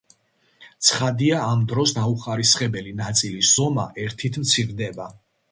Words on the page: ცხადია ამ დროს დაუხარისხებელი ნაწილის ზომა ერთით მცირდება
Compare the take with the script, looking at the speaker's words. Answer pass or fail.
pass